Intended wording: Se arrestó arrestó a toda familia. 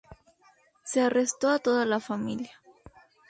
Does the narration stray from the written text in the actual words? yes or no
yes